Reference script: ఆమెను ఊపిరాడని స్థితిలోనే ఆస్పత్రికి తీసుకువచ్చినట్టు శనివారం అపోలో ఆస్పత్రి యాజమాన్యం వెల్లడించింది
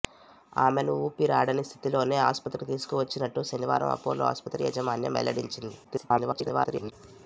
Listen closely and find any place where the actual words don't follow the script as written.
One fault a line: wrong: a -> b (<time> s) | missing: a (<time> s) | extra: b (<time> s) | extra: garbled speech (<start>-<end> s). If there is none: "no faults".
extra: garbled speech (5.8-6.9 s)